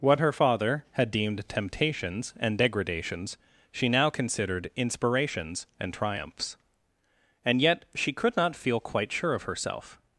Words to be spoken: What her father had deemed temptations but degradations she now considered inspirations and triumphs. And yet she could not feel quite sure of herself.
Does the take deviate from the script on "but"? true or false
true